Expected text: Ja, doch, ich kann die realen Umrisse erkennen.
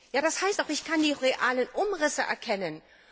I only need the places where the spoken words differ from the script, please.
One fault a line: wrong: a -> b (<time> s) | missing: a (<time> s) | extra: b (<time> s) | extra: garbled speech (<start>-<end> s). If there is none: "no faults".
extra: das heißt (0.2 s)